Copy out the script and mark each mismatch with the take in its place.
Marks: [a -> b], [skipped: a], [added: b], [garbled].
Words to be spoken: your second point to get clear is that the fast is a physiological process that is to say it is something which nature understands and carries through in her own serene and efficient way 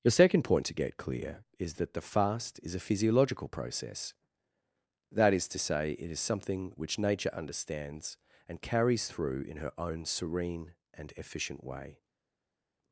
your second point to get clear is that the fast is a physiological process that is to say it is something which nature understands and carries through in her own serene and efficient way